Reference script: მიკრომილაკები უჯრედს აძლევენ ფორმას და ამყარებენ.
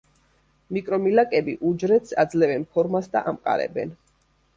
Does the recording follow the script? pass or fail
pass